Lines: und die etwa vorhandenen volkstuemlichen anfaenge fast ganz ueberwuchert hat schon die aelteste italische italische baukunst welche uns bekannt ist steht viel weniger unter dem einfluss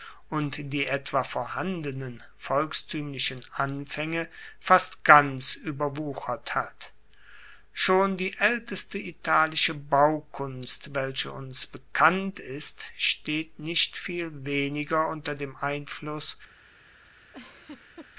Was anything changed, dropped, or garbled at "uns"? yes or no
no